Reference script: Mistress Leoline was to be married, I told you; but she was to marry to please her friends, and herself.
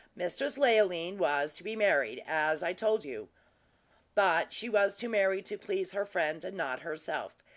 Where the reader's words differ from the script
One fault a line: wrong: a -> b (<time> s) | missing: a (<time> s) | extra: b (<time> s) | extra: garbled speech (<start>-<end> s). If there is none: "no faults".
extra: as (2.2 s)
extra: not (6.6 s)